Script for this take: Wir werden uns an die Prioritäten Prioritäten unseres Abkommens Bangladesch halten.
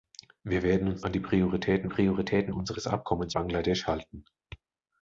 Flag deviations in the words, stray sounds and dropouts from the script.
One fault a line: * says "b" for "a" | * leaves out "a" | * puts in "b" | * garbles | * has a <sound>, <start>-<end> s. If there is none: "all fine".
all fine